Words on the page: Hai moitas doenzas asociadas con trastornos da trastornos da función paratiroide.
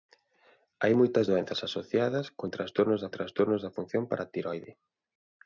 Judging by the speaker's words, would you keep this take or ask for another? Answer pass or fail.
pass